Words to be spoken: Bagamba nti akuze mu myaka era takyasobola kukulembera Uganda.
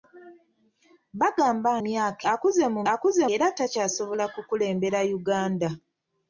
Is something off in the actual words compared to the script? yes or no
yes